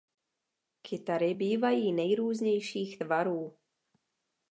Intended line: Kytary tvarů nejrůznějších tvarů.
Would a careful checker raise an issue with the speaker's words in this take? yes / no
yes